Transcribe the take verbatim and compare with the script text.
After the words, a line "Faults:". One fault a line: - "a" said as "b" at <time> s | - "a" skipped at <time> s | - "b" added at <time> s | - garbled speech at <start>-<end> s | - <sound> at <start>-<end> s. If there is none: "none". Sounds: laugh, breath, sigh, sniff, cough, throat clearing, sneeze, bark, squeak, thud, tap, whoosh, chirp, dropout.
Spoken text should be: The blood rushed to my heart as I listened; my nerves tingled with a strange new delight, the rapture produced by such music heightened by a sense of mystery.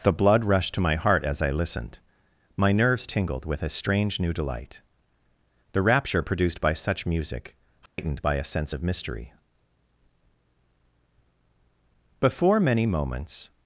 The blood rushed to my heart as I listened; my nerves tingled with a strange new delight, the rapture produced by such music heightened by a sense of mystery. Before many moments
Faults:
- dropout at 7.9-8.0 s
- "Before many moments" added at 12.2 s